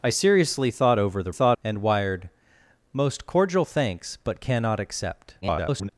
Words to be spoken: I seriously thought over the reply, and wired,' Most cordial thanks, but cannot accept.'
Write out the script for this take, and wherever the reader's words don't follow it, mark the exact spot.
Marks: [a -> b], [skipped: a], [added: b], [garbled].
I seriously thought over the [reply, -> thought] and wired,' Most cordial thanks, but cannot accept.' [garbled]